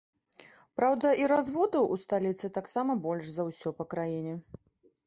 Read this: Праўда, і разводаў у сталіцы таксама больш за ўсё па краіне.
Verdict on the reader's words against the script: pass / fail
pass